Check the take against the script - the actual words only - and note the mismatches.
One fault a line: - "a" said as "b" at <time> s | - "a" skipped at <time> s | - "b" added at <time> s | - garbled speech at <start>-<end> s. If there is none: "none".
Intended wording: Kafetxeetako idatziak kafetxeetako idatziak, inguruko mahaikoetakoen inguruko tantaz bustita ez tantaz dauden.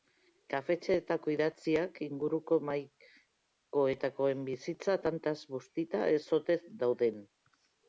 - "kafetxeetako idatziak" skipped at 2.0 s
- "inguruko" said as "bizitza" at 4.5 s
- "tantaz" said as "ote" at 6.4 s